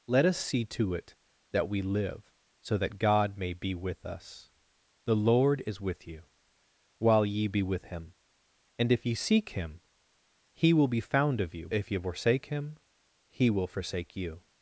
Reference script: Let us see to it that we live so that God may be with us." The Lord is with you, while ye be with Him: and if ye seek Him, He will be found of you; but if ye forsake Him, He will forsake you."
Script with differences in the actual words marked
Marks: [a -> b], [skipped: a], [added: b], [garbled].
Let us see to it that we live so that God may be with us." The Lord is with you, while ye be with Him: and if ye seek Him, He will be found of you; [skipped: but] if ye forsake Him, He will forsake you."